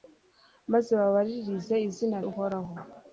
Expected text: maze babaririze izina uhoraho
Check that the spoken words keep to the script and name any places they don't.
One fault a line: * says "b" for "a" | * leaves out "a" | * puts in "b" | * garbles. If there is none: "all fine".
all fine